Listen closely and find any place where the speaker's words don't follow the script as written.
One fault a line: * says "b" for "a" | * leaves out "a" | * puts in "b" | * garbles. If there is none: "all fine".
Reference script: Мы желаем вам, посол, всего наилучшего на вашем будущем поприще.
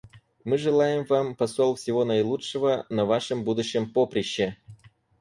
all fine